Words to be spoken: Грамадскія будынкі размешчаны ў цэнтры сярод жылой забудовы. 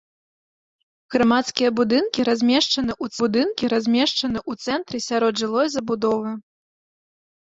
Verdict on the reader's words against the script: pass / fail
fail